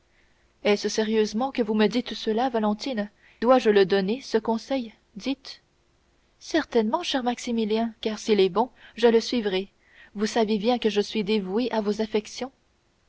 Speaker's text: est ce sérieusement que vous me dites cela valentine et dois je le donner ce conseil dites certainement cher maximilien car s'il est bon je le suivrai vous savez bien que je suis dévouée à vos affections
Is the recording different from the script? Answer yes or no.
yes